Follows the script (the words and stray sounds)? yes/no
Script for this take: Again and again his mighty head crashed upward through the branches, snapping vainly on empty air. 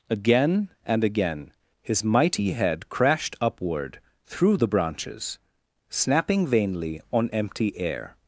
yes